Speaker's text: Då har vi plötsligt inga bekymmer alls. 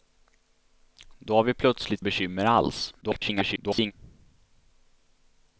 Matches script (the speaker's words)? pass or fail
fail